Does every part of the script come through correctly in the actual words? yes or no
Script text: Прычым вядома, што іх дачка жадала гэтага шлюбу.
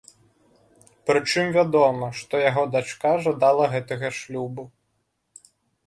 no